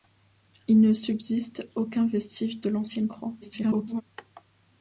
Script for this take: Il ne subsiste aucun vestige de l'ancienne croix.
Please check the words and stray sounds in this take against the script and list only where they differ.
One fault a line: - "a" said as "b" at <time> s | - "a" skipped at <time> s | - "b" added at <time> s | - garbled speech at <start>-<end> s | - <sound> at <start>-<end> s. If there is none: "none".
- garbled speech at 3.4-4.0 s